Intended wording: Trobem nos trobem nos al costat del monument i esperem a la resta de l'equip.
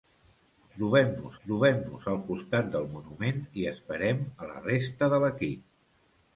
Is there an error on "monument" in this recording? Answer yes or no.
no